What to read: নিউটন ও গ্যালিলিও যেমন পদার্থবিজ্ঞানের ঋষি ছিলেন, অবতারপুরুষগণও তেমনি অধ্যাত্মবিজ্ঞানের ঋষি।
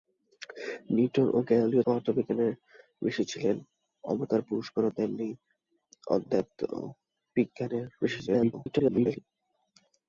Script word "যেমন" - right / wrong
wrong